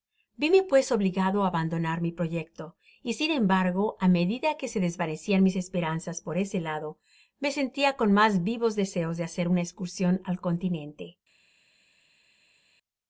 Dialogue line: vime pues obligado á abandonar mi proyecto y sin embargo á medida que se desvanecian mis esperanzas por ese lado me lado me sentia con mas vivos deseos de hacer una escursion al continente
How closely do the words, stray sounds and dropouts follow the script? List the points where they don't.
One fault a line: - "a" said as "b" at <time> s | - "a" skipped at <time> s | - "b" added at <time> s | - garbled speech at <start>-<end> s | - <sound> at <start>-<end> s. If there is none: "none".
- "lado me" skipped at 7.5 s